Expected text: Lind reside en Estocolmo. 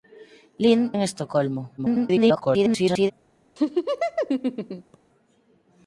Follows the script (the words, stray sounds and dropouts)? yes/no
no